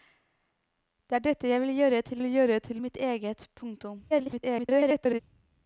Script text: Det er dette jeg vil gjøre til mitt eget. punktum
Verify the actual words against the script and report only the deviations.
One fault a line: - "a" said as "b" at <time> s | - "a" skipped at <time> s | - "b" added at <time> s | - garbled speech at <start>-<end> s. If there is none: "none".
- "vil gjøre til" added at 2.2 s
- garbled speech at 4.1-5.2 s